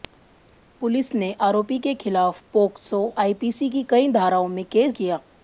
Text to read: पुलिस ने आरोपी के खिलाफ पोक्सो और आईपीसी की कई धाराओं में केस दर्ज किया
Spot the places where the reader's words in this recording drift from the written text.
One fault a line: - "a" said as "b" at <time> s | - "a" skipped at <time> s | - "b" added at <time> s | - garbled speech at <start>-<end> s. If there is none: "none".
- "और" skipped at 3.0 s
- "दर्ज" skipped at 4.9 s